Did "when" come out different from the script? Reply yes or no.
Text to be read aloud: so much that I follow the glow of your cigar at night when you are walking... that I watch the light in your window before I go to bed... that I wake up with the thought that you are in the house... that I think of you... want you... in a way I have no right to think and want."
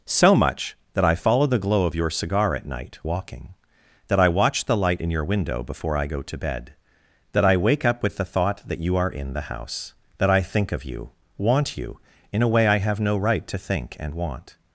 yes